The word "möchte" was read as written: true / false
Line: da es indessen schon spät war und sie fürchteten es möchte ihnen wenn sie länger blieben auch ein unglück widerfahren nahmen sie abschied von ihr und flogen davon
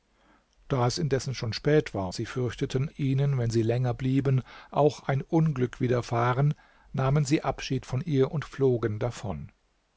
false